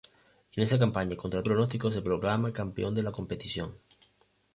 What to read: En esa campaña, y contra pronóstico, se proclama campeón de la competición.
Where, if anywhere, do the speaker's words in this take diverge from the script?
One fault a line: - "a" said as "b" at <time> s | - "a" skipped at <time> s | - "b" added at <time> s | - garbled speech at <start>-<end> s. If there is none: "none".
none